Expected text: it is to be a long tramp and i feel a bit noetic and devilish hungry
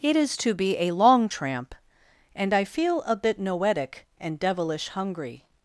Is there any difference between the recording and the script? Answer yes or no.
no